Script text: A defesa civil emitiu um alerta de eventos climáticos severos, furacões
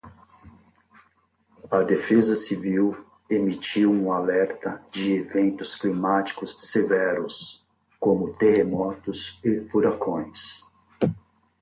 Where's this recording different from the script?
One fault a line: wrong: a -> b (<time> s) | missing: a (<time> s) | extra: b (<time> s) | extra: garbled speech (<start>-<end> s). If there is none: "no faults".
extra: como terremotos e (8.0 s)